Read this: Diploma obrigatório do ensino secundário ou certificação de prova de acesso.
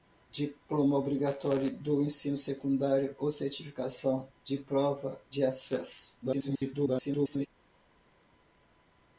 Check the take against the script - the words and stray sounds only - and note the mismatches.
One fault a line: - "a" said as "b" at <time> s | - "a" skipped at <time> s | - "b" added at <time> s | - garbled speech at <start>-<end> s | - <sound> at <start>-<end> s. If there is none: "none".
- garbled speech at 6.2-7.5 s